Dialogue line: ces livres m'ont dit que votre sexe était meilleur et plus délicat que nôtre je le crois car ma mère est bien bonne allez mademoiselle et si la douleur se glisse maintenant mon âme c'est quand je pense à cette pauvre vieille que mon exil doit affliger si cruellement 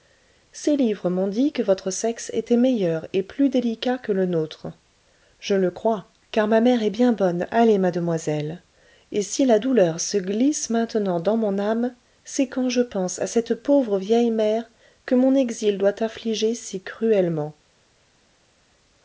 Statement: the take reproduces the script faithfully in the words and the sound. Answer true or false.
false